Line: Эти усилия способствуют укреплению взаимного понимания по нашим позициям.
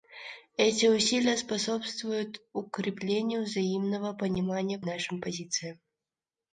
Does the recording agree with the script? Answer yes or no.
no